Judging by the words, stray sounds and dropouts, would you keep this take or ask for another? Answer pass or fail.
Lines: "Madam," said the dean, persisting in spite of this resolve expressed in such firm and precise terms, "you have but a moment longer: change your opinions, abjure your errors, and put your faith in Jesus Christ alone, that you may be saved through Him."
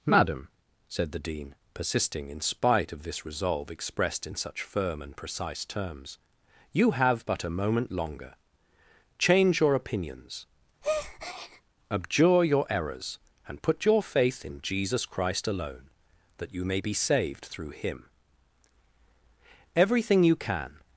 fail